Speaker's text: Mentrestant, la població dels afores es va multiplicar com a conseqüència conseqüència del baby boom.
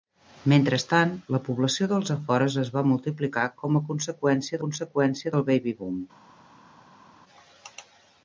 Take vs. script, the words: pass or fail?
pass